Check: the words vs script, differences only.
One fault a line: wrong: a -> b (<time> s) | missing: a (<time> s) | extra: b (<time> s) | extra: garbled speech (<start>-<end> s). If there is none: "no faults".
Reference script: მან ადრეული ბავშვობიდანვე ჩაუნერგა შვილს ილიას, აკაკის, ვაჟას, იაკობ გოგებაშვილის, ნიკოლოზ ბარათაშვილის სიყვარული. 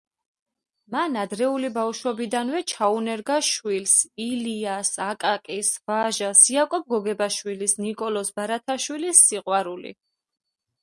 no faults